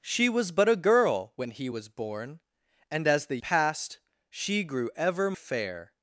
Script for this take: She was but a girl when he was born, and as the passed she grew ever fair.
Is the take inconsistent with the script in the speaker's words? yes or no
no